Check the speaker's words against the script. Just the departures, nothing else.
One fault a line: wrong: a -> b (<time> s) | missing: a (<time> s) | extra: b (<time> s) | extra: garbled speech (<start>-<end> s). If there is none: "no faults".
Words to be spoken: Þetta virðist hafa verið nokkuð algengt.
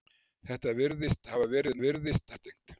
wrong: nokkuð -> virðist (1.8 s)